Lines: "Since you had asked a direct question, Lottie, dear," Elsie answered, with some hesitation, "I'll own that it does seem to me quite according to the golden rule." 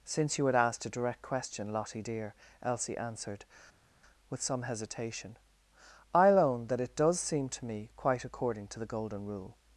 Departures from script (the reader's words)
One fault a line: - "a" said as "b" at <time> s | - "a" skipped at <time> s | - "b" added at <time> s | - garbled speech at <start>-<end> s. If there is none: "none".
none